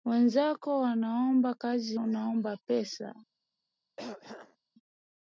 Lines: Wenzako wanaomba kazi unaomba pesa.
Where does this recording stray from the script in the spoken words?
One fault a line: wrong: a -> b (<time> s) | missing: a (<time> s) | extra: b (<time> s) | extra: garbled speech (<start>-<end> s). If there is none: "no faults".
no faults